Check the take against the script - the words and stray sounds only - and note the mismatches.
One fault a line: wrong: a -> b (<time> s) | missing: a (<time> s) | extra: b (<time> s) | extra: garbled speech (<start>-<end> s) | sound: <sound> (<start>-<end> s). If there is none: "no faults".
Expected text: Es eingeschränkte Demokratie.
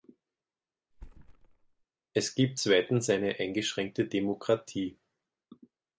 sound: thud (0.9-1.8 s)
extra: gibt zweitens eine (2.3 s)